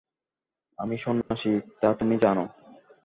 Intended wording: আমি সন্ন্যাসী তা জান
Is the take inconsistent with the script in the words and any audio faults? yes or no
yes